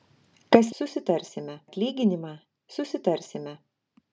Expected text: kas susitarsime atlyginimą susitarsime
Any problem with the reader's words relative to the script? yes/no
no